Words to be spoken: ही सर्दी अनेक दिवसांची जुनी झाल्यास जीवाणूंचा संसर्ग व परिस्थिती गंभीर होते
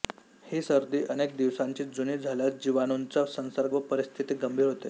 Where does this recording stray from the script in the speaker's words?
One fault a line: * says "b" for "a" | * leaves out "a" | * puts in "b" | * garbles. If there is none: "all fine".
all fine